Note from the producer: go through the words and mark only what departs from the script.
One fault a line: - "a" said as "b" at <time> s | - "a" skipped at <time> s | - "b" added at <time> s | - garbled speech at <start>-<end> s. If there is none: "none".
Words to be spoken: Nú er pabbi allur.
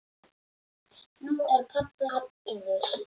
none